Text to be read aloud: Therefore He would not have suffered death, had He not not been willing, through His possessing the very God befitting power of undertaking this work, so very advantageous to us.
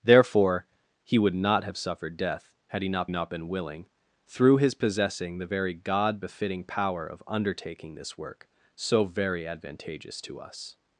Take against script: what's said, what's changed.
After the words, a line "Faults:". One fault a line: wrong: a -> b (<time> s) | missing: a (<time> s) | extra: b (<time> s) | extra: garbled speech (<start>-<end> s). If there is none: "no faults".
Therefore He would not have suffered death, had He not not been willing, through His possessing the very God befitting power of undertaking this work, so very advantageous to us.
Faults:
no faults